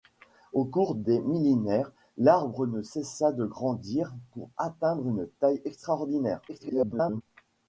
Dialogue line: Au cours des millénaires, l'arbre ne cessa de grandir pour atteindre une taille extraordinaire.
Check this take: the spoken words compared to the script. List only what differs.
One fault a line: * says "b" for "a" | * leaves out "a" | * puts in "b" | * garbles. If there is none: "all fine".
* garbles